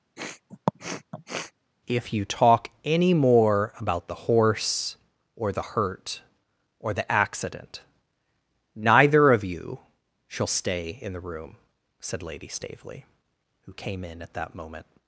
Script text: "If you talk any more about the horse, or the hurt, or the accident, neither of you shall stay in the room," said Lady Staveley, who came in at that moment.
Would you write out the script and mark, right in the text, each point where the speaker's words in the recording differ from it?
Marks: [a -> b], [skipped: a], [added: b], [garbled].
"If you talk any more about the horse, or the hurt, or the accident, neither of you shall stay in the room," said Lady Staveley, who came in at that moment.